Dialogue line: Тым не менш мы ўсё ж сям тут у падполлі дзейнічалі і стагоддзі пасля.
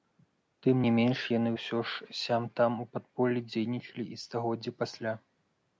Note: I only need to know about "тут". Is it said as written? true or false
false